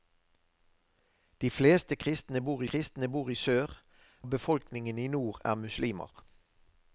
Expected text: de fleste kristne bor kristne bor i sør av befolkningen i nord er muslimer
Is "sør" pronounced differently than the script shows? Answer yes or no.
no